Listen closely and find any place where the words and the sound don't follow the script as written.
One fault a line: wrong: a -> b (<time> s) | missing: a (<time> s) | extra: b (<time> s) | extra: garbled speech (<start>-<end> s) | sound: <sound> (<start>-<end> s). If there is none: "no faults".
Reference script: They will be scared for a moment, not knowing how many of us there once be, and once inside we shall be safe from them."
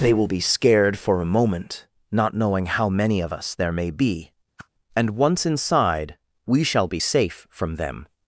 wrong: once -> may (3.7 s)
sound: whoosh (4.6-4.7 s)